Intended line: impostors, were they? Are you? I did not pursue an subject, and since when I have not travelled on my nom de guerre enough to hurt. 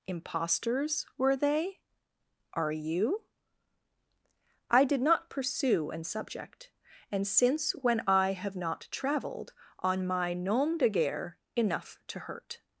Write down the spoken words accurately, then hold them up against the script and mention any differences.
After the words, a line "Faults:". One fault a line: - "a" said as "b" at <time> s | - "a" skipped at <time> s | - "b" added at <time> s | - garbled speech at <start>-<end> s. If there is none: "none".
impostors, were they? Are you? I did not pursue an subject, and since when I have not travelled on my nom de guerre enough to hurt.
Faults:
none